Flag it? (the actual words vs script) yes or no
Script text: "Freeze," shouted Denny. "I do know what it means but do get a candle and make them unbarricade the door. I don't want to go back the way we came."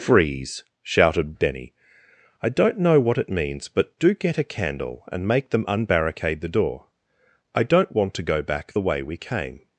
yes